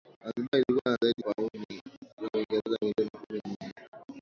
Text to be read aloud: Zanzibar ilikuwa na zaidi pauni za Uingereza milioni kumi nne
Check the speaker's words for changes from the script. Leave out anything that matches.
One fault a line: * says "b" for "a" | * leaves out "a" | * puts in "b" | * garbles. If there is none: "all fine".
all fine